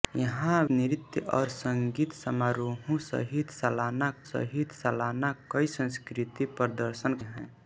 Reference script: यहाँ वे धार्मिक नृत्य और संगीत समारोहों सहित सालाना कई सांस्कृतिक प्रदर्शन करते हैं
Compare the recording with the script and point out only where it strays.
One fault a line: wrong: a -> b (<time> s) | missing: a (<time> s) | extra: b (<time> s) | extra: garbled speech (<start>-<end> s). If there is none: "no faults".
missing: वे धार्मिक (0.6 s)
extra: सहित सालाना (4.3 s)
missing: करते (7.1 s)